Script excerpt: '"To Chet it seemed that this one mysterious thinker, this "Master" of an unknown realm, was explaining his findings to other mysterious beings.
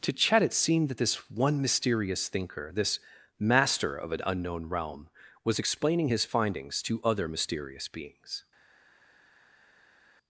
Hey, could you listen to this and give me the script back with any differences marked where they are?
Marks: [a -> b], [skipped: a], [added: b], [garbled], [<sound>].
'"To Chet it seemed that this one mysterious thinker, this "Master" of an unknown realm, was explaining his findings to other mysterious beings.